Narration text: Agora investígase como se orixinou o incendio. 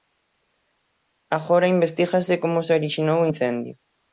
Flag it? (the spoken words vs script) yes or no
no